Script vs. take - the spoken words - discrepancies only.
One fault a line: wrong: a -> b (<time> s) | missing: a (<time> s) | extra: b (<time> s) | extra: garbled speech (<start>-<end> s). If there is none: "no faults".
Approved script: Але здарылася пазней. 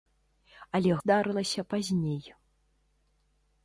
no faults